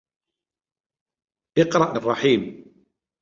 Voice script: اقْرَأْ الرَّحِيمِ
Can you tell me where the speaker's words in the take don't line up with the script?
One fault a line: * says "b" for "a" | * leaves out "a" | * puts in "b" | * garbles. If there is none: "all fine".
all fine